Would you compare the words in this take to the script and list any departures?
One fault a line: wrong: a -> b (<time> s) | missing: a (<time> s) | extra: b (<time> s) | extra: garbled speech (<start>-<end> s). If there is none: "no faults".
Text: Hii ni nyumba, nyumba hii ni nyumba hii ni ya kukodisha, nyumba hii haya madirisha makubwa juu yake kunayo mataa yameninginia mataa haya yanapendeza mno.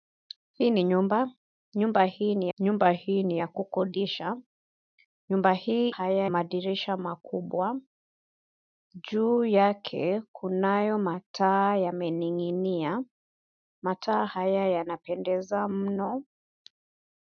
no faults